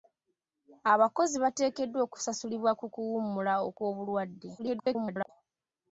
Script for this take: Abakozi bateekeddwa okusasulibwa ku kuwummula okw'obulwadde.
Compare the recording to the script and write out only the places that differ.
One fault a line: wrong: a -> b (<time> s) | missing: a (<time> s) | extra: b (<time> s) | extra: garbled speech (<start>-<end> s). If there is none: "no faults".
extra: garbled speech (4.6-5.3 s)